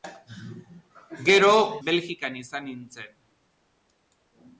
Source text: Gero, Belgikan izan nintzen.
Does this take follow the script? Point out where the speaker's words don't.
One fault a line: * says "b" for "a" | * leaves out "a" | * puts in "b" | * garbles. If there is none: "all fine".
all fine